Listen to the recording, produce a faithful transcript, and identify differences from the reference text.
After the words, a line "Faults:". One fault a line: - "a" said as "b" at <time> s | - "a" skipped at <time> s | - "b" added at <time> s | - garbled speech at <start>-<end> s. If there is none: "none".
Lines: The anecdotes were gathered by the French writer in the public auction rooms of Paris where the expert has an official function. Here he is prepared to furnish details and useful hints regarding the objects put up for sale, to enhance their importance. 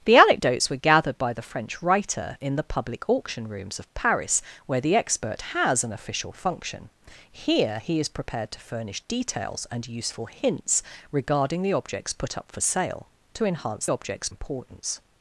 The anecdotes were gathered by the French writer in the public auction rooms of Paris where the expert has an official function. Here he is prepared to furnish details and useful hints regarding the objects put up for sale, to enhance objects importance.
Faults:
- "their" said as "objects" at 13.9 s